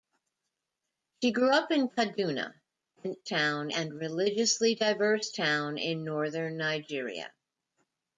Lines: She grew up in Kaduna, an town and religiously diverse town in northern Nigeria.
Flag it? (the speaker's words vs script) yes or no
no